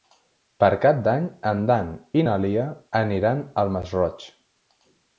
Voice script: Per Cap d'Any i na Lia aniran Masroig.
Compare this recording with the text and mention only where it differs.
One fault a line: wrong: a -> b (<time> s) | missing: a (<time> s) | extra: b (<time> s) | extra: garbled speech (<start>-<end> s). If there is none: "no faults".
extra: en Dan (1.5 s)
extra: al (3.6 s)